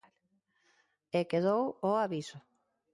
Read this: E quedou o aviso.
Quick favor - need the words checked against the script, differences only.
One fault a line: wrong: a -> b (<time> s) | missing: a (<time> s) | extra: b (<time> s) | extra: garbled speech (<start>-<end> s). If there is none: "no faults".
no faults